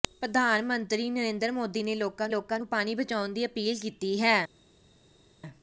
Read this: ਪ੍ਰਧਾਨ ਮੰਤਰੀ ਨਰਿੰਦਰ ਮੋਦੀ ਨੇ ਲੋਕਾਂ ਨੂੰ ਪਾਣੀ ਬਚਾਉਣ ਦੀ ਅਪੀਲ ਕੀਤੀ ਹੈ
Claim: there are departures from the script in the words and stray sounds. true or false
true